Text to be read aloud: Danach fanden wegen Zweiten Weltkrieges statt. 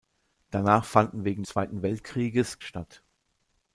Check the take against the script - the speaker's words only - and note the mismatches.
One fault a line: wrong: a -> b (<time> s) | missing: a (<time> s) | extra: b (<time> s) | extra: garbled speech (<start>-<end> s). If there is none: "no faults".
no faults